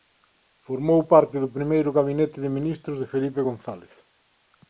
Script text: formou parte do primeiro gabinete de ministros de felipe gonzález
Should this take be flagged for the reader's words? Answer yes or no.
no